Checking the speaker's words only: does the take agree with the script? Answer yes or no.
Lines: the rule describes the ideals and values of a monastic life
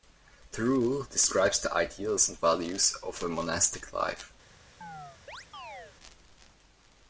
yes